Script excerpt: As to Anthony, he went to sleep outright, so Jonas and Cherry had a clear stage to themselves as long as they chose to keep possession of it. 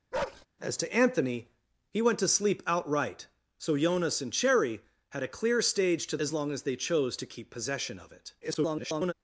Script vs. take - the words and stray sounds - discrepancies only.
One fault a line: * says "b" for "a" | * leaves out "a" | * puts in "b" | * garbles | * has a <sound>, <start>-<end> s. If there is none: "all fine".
* has a bark, 0.1-0.5 s
* leaves out "themselves"
* garbles